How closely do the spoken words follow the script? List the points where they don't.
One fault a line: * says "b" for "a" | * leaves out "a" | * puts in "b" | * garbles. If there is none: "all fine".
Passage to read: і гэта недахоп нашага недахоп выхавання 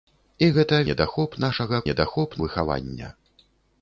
all fine